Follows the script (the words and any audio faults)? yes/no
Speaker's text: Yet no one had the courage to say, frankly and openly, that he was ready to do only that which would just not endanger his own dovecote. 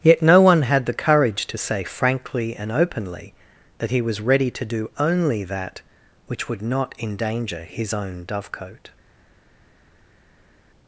no